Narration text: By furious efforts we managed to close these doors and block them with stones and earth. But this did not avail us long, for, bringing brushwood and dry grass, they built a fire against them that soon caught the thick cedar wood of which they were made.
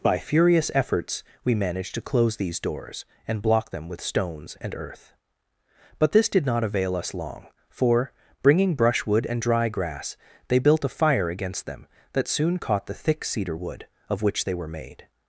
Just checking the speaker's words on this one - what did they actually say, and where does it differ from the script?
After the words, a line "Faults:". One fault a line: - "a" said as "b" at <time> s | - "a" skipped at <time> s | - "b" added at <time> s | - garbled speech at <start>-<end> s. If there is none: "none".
By furious efforts we managed to close these doors and block them with stones and earth. But this did not avail us long, for, bringing brushwood and dry grass, they built a fire against them that soon caught the thick cedar wood of which they were made.
Faults:
none